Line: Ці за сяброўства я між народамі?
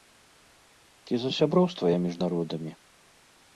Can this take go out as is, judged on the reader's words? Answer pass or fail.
pass